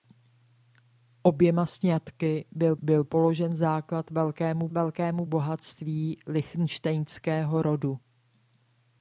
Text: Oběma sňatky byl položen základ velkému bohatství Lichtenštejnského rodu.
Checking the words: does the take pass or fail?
fail